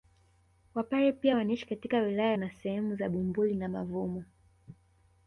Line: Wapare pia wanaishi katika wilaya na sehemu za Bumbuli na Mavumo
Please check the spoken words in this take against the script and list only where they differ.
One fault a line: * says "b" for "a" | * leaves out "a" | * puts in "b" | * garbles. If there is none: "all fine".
all fine